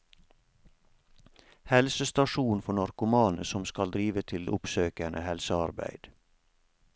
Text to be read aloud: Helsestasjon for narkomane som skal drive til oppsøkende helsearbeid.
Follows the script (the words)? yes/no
yes